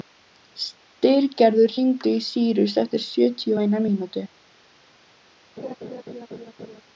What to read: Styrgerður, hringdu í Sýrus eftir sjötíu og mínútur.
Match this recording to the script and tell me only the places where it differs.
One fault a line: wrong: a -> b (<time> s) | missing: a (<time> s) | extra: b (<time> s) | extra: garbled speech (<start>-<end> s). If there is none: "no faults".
extra: eina (3.7 s)